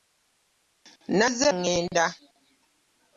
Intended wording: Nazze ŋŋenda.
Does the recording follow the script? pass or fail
pass